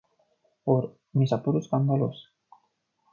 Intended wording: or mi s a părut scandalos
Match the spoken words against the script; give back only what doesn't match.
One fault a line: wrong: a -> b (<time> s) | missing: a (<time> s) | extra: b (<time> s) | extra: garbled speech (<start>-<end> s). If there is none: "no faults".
no faults